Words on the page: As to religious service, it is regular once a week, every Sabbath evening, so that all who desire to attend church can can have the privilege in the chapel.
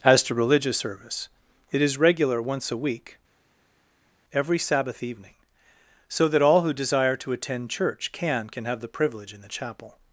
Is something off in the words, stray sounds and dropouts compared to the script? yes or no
no